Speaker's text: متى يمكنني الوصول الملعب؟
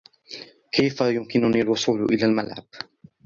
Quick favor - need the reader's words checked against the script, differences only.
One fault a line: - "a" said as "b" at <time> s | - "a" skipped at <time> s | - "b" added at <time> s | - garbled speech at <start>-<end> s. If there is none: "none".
- "متى" said as "كيف" at 0.7 s
- "إلى" added at 2.0 s